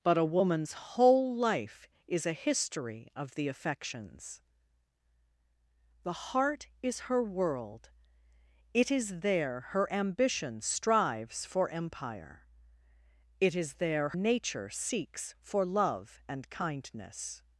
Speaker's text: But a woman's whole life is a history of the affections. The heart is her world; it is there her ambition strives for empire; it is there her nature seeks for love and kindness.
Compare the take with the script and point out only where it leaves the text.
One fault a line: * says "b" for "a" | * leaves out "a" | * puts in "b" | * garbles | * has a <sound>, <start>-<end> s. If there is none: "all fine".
* leaves out "her"